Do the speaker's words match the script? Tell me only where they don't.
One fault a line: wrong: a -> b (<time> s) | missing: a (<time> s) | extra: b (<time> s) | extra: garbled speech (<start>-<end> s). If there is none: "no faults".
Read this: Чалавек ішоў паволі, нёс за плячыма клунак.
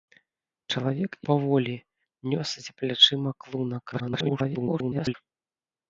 missing: ішоў (1.1 s)
extra: garbled speech (3.9-5.1 s)